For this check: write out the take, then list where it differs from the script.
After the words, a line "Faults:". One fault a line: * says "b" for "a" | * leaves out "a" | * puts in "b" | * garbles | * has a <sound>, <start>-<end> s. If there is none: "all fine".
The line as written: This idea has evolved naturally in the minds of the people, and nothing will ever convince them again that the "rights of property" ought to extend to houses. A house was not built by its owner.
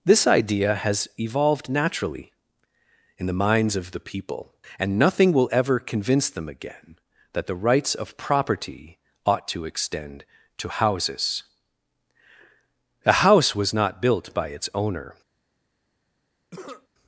This idea has evolved naturally in the minds of the people, and nothing will ever convince them again that the "rights of property" ought to extend to houses. A house was not built by its owner.
Faults:
* has a cough, 16.5-16.9 s